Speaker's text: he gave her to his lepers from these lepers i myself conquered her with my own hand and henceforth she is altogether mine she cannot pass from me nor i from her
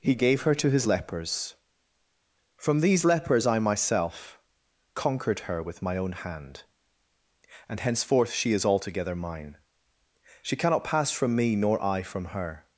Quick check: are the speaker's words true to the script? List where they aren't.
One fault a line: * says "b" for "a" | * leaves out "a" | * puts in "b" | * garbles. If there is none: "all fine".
all fine